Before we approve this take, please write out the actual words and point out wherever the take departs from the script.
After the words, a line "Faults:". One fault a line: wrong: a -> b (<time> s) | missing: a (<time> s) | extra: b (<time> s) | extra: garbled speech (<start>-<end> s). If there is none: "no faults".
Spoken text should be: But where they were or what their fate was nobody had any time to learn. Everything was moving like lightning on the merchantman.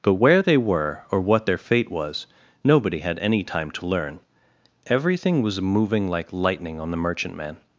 But where they were or what their fate was nobody had any time to learn. Everything was moving like lightning on the merchantman.
Faults:
no faults